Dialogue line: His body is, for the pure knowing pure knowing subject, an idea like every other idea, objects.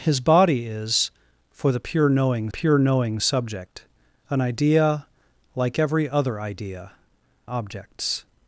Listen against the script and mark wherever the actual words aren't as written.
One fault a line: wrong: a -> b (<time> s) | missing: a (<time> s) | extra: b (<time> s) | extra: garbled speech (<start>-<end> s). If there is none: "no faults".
no faults